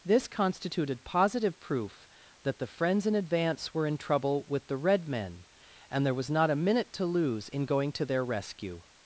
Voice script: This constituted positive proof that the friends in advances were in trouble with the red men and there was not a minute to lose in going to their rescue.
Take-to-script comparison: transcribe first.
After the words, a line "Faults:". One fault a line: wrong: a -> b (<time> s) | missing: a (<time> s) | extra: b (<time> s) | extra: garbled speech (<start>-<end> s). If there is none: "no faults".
This constituted positive proof that the friends in advance were in trouble with the red men and there was not a minute to lose in going to their rescue.
Faults:
wrong: advances -> advance (3.1 s)